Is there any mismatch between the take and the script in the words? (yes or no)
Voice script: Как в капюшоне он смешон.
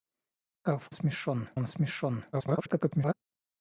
yes